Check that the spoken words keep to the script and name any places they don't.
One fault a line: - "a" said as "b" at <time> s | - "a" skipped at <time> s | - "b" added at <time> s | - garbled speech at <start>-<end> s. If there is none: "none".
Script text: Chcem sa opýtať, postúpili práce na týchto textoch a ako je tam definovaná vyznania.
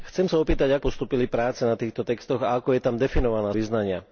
none